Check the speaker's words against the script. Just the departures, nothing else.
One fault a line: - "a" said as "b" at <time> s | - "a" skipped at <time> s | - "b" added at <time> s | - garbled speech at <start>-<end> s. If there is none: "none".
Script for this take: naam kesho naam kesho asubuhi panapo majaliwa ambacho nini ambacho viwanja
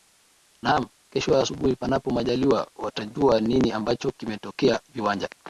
- "naam kesho" skipped at 1.4 s
- "ambacho" said as "watajua" at 2.8 s
- "kimetokea" added at 4.1 s